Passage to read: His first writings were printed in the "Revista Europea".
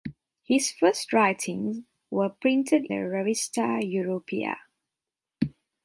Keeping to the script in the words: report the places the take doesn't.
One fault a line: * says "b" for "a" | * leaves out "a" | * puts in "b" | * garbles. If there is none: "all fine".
* leaves out "in"